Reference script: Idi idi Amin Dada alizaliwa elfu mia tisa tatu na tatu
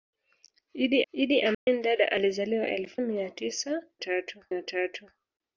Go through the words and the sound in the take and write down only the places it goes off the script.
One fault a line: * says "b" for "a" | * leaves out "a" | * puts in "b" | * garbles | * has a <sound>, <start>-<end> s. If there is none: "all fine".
* has a dropout, 1.5-1.7 s